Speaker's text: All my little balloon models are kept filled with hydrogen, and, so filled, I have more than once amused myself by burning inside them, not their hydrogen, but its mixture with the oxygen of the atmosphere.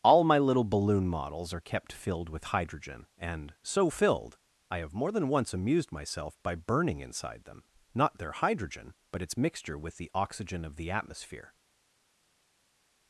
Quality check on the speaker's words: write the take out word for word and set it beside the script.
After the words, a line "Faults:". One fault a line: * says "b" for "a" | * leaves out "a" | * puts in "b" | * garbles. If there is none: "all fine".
All my little balloon models are kept filled with hydrogen, and, so filled, I have more than once amused myself by burning inside them, not their hydrogen, but its mixture with the oxygen of the atmosphere.
Faults:
all fine